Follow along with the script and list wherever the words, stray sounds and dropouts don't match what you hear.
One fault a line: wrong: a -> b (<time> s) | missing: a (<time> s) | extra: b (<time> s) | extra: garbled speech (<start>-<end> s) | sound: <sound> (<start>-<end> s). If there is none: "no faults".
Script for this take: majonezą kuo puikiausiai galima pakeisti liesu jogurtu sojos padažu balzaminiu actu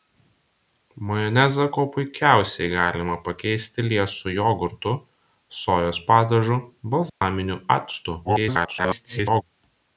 sound: dropout (7.1-7.2 s)
extra: garbled speech (8.2-9.4 s)